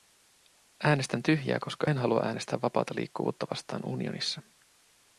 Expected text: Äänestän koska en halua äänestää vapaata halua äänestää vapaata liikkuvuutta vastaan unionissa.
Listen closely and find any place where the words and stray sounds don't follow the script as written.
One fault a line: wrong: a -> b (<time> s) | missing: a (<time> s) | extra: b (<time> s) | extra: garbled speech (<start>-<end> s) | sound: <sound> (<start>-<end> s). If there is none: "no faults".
extra: tyhjää (1.2 s)
missing: halua äänestää vapaata (2.9 s)